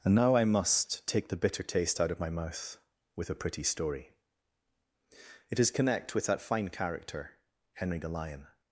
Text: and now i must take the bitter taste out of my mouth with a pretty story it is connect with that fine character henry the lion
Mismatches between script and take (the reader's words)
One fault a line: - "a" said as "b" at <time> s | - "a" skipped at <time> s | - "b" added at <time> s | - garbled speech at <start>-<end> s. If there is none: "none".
none